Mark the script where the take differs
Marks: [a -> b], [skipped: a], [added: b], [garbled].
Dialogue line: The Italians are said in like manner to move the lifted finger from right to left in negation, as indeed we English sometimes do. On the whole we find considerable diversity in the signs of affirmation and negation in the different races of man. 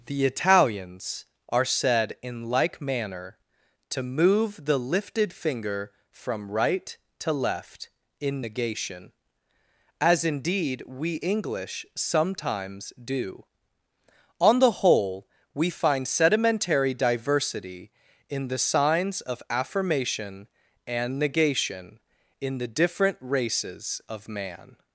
The Italians are said in like manner to move the lifted finger from right to left in negation, as indeed we English sometimes do. On the whole we find [considerable -> sedimentary] diversity in the signs of affirmation and negation in the different races of man.